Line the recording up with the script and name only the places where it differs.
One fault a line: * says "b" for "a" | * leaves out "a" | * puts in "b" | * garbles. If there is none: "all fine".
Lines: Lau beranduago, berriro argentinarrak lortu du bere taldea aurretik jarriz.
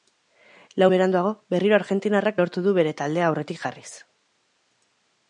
all fine